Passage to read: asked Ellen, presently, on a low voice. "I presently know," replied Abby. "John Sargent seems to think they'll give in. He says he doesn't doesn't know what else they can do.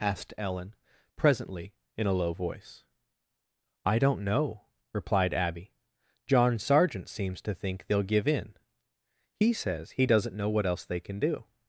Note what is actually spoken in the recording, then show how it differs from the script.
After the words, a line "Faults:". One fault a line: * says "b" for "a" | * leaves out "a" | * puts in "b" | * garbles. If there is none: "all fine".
asked Ellen, presently, in a low voice. "I don't know," replied Abby. "John Sargent seems to think they'll give in. He says he doesn't know what else they can do.
Faults:
* says "in" for "on"
* says "don't" for "presently"
* leaves out "doesn't"